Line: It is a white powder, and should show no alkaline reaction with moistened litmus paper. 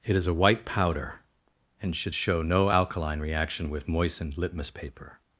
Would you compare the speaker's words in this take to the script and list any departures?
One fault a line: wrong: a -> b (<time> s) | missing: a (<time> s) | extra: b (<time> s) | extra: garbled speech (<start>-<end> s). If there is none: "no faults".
no faults